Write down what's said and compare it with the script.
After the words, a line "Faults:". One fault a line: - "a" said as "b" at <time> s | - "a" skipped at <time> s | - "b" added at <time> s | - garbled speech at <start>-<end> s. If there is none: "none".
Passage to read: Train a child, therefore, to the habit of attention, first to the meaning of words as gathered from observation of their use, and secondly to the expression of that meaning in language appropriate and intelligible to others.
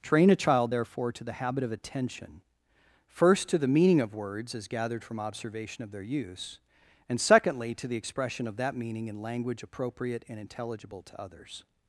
Train a child, therefore, to the habit of attention, first to the meaning of words as gathered from observation of their use, and secondly to the expression of that meaning in language appropriate and intelligible to others.
Faults:
none